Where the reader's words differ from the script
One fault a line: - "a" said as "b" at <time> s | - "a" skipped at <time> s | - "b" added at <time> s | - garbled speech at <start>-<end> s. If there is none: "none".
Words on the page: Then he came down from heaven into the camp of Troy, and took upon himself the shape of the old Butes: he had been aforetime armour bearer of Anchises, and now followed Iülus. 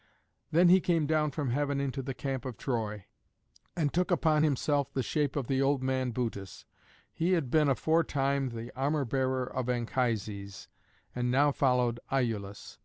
- "man" added at 5.8 s
- "the" added at 8.5 s